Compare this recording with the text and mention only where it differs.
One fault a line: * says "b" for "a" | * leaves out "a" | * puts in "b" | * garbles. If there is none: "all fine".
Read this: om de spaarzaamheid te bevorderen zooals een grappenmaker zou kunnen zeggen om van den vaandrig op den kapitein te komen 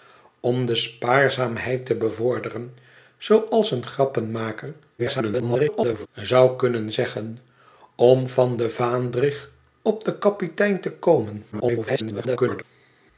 * garbles
* garbles